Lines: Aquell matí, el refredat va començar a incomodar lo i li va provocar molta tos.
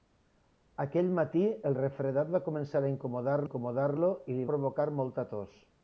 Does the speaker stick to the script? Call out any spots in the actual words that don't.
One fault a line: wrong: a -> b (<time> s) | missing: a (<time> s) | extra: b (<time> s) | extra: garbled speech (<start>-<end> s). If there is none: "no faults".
extra: incomodar (3.4 s)
missing: va (4.5 s)